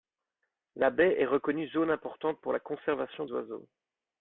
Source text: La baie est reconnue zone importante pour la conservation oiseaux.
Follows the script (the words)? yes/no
yes